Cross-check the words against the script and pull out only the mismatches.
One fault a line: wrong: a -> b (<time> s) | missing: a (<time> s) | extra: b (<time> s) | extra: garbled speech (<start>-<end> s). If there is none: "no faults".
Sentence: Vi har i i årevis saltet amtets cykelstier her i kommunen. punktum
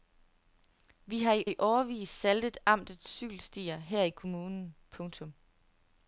no faults